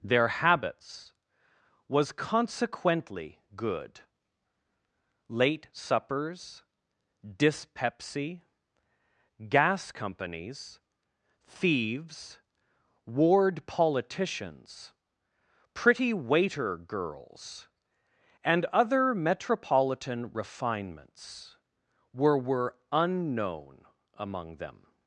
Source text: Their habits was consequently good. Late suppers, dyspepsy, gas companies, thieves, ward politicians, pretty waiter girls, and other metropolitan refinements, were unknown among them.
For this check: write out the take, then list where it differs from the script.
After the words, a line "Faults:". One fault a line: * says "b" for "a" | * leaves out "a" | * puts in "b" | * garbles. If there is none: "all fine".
Their habits was consequently good. Late suppers, dyspepsy, gas companies, thieves, ward politicians, pretty waiter girls, and other metropolitan refinements, were were unknown among them.
Faults:
* puts in "were"